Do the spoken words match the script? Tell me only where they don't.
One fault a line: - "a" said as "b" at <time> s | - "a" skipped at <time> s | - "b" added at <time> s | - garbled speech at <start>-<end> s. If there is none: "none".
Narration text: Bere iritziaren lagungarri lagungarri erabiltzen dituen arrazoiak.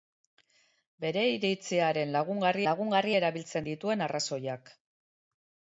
none